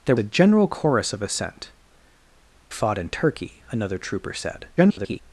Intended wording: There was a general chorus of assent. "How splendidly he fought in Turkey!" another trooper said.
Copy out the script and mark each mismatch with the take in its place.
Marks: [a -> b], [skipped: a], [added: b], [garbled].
There [skipped: was] a general chorus of assent. [skipped: "How splendidly he] fought in Turkey!" another trooper said. [garbled]